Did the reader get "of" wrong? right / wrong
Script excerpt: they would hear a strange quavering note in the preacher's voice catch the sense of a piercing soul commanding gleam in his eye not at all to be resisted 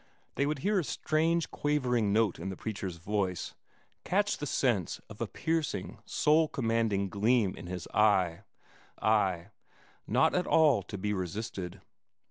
right